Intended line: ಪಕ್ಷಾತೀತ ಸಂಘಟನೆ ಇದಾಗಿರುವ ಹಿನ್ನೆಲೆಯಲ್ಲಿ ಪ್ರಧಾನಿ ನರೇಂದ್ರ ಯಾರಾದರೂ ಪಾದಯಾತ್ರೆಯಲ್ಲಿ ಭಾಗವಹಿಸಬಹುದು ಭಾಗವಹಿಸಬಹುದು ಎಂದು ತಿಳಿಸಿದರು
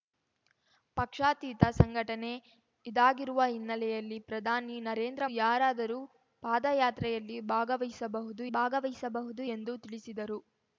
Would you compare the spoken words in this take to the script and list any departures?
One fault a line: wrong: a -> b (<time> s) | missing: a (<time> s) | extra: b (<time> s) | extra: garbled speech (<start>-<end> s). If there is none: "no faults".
no faults